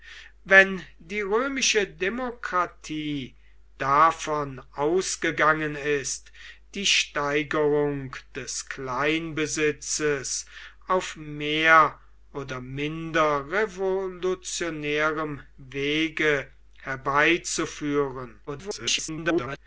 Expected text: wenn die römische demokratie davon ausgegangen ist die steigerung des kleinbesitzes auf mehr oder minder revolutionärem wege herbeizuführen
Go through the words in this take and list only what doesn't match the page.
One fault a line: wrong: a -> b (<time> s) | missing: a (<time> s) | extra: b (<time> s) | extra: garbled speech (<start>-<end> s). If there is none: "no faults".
extra: garbled speech (18.5-19.6 s)